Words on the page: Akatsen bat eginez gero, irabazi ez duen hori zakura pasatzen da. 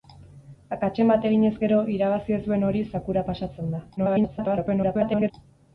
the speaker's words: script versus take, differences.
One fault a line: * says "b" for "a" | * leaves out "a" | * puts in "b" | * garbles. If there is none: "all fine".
* garbles